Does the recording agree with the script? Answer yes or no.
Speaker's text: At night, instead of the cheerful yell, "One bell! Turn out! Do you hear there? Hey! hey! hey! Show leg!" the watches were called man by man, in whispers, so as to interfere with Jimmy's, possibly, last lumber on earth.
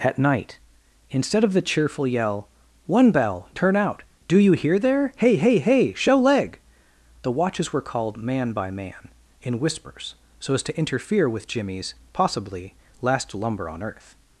yes